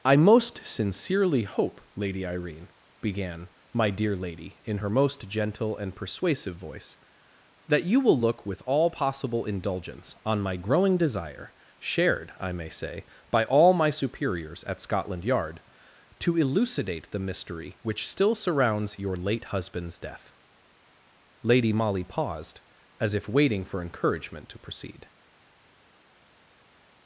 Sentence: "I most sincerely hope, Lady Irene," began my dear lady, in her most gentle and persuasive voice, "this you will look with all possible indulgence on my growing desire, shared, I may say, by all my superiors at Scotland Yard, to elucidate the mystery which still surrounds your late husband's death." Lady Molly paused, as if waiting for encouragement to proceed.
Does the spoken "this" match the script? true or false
false